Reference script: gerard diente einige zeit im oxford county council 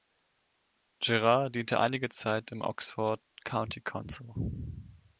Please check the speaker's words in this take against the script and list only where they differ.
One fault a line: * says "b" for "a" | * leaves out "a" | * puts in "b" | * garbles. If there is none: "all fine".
all fine